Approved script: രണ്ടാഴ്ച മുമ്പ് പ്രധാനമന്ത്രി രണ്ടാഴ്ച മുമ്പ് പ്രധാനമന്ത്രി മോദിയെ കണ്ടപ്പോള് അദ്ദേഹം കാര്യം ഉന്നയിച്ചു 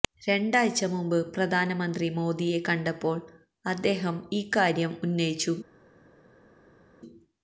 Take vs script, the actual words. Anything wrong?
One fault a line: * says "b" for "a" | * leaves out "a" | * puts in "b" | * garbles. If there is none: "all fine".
* leaves out "രണ്ടാഴ്ച മുമ്പ് പ്രധാനമന്ത്രി"
* puts in "ഈ"